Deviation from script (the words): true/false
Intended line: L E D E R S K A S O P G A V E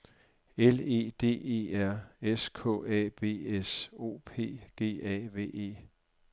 true